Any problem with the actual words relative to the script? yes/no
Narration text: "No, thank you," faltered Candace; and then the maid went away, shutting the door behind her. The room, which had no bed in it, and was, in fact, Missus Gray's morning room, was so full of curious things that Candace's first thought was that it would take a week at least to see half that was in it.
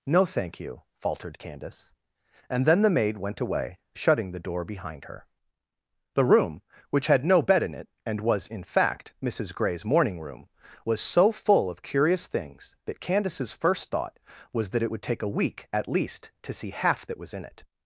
no